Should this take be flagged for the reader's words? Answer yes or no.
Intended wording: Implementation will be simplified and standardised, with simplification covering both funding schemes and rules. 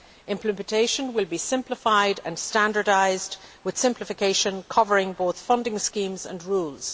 no